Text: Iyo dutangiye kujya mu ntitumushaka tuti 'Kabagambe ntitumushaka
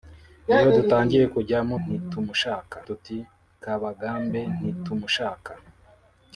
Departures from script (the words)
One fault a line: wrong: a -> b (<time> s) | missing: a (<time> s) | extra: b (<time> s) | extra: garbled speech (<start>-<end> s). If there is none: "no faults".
no faults